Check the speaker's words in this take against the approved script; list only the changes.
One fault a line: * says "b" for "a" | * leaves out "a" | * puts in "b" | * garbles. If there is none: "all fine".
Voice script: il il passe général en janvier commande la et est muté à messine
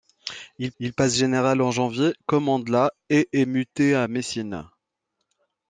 all fine